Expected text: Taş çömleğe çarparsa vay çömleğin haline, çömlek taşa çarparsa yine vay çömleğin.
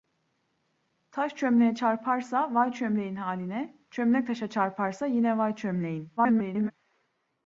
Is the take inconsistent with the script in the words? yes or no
yes